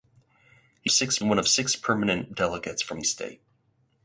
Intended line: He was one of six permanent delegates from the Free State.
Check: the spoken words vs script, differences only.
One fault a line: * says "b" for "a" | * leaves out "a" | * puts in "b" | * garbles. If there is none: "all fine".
* says "six" for "was"
* leaves out "the Free"